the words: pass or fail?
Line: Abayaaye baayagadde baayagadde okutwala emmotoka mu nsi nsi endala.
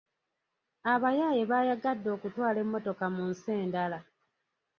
fail